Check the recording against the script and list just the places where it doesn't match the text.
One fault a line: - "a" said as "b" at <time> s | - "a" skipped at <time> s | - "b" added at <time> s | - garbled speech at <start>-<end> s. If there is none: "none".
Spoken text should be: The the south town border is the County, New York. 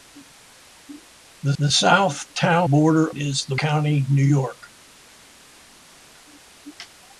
none